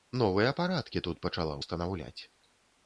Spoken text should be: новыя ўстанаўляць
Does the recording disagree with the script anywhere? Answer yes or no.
yes